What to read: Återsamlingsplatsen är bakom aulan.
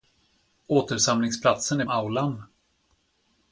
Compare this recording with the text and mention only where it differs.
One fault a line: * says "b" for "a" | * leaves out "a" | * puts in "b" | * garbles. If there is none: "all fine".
* leaves out "bakom"